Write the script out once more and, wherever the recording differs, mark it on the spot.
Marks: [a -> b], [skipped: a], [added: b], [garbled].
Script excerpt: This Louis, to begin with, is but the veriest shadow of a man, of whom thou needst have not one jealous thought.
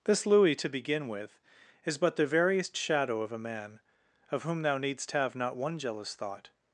This Louis, to begin with, is but the veriest shadow of a man, of whom thou needst have not one jealous thought.